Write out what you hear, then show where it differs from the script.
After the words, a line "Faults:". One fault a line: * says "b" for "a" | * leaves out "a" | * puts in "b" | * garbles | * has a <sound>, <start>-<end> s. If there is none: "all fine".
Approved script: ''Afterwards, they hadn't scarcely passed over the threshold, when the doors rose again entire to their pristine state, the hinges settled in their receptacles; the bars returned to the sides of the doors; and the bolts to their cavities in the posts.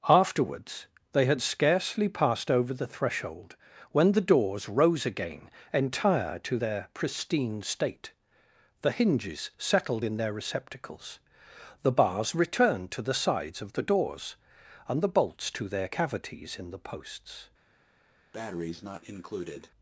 ''Afterwards, they had scarcely passed over the threshold, when the doors rose again entire to their pristine state, the hinges settled in their receptacles; the bars returned to the sides of the doors; and the bolts to their cavities in the posts.
Faults:
* says "had" for "hadn't"
* has a breath, 18.3-19.7 s